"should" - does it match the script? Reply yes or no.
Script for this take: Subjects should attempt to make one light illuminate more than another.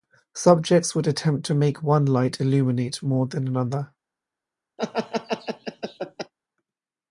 no